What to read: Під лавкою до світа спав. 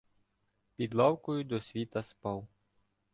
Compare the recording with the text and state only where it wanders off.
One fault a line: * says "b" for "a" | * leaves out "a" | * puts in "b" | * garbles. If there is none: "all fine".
all fine